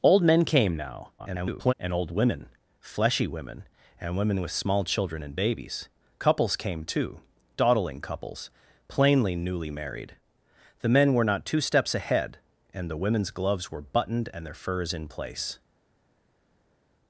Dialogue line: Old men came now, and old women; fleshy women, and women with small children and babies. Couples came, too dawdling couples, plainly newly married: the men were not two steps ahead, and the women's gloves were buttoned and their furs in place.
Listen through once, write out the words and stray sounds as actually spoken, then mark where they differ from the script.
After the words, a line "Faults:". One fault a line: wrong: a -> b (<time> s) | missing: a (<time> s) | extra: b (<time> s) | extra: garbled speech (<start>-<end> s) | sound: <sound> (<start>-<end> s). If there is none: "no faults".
Old men came now, [garbled] and old women; fleshy women, and women with small children and babies. Couples came, too dawdling couples, plainly newly married: the men were not two steps ahead, and the women's gloves were buttoned and their furs in place.
Faults:
extra: garbled speech (1.2-1.7 s)